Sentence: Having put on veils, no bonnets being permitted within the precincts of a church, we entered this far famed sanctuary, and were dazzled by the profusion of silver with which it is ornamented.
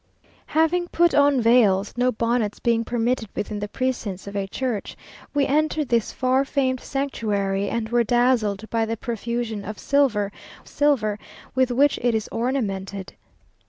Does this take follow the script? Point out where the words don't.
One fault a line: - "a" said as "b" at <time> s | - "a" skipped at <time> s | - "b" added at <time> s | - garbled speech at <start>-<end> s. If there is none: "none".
- "silver" added at 10.6 s